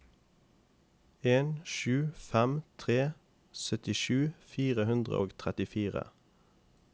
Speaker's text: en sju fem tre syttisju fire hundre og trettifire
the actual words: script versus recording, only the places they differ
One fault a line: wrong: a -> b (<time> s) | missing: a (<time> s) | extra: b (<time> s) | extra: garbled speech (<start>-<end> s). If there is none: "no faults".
no faults